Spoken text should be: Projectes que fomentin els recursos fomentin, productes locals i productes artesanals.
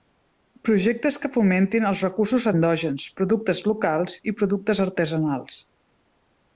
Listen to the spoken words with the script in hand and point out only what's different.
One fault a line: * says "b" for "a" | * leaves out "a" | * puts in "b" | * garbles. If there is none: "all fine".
* says "endògens" for "fomentin"